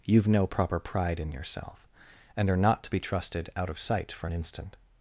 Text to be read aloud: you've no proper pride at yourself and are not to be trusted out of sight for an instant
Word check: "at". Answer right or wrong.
wrong